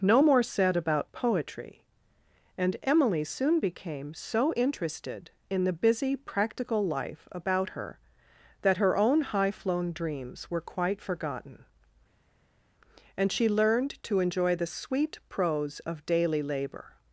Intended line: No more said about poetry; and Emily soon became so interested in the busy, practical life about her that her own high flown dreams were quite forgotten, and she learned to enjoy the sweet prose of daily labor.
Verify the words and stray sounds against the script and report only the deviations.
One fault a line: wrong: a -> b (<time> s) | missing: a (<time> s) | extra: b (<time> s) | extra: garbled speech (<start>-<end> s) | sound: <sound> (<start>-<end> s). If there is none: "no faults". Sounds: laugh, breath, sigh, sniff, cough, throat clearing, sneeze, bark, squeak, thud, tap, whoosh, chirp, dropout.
no faults